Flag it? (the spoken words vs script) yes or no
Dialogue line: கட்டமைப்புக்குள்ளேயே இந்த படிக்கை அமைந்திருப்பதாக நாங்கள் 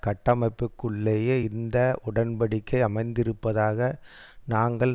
yes